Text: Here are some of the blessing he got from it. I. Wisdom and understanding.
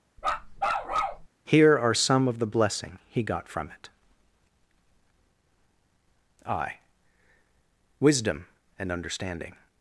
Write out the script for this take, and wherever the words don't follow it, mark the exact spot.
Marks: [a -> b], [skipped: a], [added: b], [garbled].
Here are some of the blessing he got from it. I. Wisdom and understanding.